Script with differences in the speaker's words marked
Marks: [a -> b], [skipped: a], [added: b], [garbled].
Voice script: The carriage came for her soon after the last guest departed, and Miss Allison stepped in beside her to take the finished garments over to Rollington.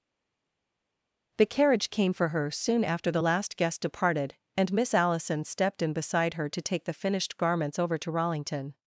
The carriage came for her soon after the last guest departed, and Miss Allison stepped in beside her to take the finished garments over to Rollington.